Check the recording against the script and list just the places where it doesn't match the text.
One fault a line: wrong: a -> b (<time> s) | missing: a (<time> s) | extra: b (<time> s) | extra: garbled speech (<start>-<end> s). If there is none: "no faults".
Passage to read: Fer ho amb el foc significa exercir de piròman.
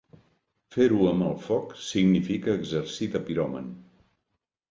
no faults